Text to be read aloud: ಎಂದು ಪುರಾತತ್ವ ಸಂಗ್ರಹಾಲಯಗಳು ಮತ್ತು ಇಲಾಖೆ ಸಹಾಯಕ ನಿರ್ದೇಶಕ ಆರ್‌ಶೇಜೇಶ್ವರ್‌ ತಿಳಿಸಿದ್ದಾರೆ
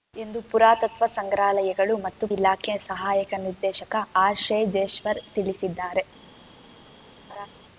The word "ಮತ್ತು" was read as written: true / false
true